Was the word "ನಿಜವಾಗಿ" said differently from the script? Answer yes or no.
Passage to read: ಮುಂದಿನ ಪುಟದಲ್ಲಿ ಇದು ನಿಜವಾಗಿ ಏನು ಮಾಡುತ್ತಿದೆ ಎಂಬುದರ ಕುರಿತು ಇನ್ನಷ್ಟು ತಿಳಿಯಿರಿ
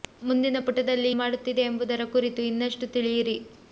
yes